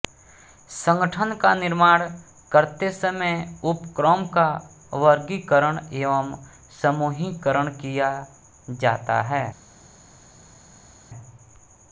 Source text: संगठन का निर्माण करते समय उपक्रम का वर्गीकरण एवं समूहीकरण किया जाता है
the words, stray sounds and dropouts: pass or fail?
pass